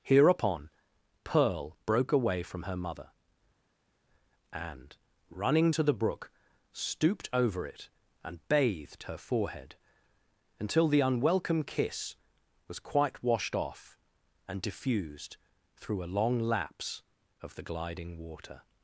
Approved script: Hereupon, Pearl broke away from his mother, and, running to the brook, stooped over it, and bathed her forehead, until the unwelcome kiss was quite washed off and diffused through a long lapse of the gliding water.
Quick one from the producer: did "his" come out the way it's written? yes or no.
no